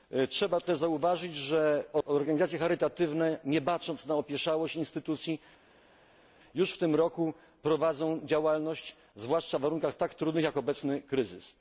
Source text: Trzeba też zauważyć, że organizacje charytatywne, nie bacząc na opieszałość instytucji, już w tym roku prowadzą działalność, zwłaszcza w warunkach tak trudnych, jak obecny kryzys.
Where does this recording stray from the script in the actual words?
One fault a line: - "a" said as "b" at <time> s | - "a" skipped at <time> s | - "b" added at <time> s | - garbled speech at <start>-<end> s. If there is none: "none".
none